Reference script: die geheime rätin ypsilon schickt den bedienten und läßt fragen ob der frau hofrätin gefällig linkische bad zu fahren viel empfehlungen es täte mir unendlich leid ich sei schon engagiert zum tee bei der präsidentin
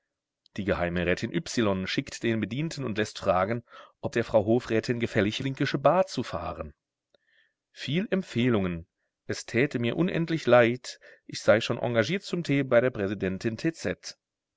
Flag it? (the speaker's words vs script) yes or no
no